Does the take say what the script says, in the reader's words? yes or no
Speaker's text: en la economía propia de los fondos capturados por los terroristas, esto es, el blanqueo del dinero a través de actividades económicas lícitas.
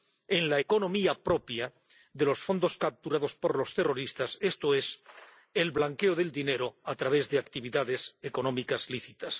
yes